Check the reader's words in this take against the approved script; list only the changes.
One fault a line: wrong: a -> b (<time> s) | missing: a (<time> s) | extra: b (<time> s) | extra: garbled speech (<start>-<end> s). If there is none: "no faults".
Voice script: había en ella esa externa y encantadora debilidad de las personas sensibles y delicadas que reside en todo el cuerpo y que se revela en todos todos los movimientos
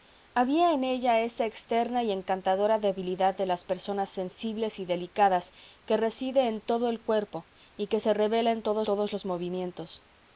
no faults